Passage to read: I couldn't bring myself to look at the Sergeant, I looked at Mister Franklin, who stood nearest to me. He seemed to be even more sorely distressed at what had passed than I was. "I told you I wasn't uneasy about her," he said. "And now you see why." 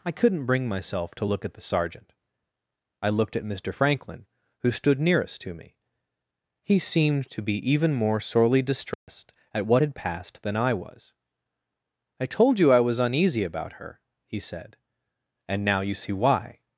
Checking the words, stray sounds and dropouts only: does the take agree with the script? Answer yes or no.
no